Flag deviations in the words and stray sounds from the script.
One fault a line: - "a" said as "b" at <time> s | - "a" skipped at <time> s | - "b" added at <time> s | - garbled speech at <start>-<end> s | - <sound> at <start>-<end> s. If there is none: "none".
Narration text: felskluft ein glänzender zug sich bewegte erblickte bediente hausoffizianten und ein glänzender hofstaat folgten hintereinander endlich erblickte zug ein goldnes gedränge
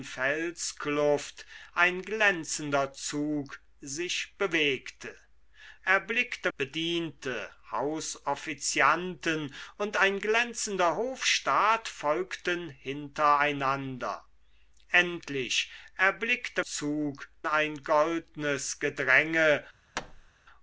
- thud at 19.9-20.3 s